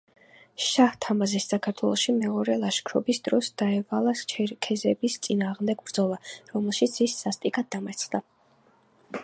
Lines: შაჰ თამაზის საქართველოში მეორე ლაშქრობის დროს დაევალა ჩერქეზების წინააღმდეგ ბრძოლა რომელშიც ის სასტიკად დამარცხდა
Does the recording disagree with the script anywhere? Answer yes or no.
no